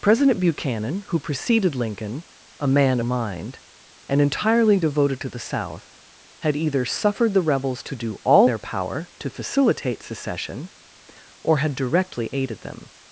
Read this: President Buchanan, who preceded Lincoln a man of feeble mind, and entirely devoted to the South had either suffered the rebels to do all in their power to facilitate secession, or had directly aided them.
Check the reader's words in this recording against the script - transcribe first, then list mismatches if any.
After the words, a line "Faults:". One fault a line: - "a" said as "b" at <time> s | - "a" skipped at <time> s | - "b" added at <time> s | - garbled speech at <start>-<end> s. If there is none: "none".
President Buchanan, who preceded Lincoln a man mind, and entirely devoted to the South had either suffered the rebels to do all their power to facilitate secession, or had directly aided them.
Faults:
- "of feeble" skipped at 3.0 s
- "in" skipped at 8.5 s